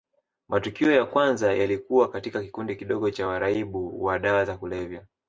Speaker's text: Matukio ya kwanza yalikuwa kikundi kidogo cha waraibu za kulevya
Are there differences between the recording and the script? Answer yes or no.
yes